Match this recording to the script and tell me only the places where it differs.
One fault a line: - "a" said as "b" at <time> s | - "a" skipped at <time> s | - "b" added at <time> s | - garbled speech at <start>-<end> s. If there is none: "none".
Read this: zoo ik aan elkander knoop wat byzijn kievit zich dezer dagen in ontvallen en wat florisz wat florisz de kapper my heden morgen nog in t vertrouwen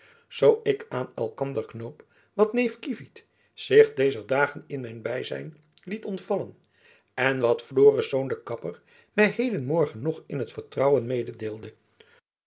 - "byzijn" said as "neef" at 2.5 s
- "mijn byzijn liet" added at 4.8 s
- "wat florisz" skipped at 8.1 s